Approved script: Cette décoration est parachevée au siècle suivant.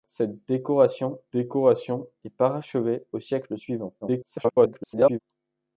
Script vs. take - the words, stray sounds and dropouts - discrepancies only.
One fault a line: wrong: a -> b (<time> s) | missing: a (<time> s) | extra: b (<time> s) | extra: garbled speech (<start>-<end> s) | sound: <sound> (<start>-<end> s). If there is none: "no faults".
extra: décoration (1.3 s)
extra: garbled speech (4.0-5.2 s)